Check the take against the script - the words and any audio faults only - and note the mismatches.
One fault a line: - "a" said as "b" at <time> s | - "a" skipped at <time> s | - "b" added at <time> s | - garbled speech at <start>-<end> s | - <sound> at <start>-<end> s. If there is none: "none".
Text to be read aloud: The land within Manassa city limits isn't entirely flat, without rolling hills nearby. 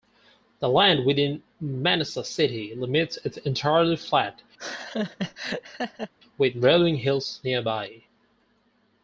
- "isn't" said as "is" at 3.2 s
- laugh at 4.6-6.1 s
- "without" said as "with" at 6.4 s